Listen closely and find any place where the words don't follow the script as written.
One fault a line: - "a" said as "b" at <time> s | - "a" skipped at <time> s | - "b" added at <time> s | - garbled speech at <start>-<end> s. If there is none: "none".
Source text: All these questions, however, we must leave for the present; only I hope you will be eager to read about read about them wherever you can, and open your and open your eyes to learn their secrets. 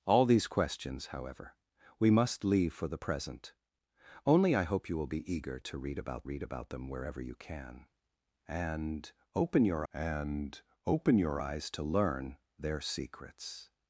none